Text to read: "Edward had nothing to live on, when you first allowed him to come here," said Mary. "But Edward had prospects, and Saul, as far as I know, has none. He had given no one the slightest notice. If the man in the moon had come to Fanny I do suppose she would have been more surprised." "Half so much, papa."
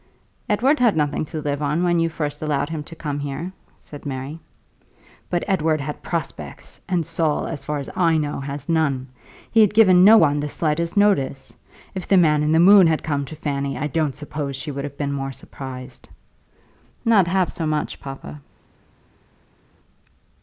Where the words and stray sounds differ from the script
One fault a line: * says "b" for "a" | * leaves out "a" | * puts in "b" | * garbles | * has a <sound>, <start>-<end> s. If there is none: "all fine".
* says "don't" for "do"
* puts in "Not"